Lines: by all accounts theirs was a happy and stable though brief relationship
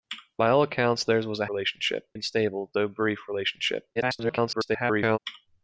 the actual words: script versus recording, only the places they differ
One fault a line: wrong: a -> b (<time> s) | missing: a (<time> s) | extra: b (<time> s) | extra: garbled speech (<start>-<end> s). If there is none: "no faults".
wrong: happy -> relationship (1.5 s)
extra: garbled speech (4.0-5.2 s)